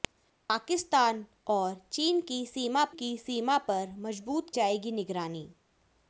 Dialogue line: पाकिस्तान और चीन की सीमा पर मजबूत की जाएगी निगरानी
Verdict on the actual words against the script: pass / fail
fail